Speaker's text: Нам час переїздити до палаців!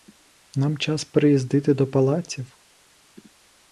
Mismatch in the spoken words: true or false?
false